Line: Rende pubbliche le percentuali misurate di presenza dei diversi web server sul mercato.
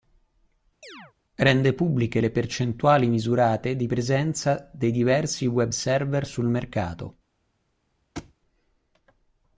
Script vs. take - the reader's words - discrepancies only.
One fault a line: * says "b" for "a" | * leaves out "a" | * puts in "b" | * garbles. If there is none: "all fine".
all fine